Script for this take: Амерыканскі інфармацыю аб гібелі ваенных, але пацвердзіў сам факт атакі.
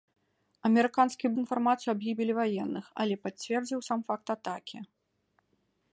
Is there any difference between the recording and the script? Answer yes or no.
no